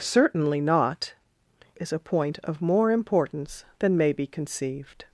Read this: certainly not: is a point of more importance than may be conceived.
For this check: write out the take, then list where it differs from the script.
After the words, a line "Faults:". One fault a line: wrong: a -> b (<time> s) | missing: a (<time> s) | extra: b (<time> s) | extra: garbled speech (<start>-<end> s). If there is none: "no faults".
certainly not: is a point of more importance than may be conceived.
Faults:
no faults